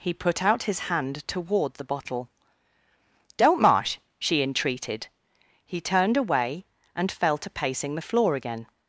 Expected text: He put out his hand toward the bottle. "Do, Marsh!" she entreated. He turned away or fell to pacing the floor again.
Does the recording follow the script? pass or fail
fail